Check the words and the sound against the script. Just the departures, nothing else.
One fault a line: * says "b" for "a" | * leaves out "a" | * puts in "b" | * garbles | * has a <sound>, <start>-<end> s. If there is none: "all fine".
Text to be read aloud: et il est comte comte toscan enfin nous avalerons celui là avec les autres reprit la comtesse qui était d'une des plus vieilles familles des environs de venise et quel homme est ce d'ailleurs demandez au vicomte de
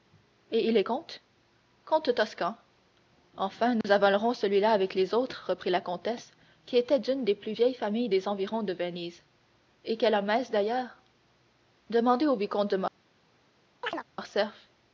* has a dropout, 3.8-3.8 s
* has a chirp, 13.8-14.0 s